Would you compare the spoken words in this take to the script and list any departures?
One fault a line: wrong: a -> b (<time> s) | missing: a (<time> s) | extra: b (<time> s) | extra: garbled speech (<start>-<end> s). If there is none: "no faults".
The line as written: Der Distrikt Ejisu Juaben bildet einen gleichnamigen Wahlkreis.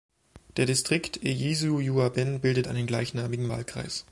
no faults